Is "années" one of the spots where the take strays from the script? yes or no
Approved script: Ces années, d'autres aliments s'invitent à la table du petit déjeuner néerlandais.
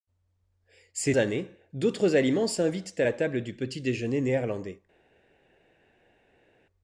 no